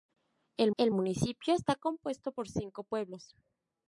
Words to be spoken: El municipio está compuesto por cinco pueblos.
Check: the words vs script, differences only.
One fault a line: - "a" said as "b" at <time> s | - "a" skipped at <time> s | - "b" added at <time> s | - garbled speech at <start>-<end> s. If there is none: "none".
- "el" added at 0.8 s